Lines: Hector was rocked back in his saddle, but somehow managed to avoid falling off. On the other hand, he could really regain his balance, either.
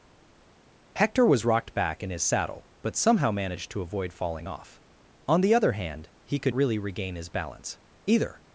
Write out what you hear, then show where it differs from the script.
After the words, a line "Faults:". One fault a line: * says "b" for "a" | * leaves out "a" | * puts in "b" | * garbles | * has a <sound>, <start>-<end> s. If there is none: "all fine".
Hector was rocked back in his saddle, but somehow managed to avoid falling off. On the other hand, he could really regain his balance, either.
Faults:
all fine